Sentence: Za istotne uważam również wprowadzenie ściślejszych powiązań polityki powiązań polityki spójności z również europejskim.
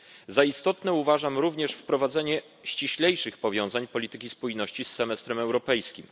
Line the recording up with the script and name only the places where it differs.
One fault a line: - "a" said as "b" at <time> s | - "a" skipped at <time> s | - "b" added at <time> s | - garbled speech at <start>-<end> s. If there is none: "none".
- "powiązań polityki" skipped at 4.3 s
- "również" said as "semestrem" at 4.9 s